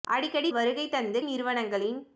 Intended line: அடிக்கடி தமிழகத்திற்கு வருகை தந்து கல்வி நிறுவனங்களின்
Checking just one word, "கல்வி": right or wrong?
wrong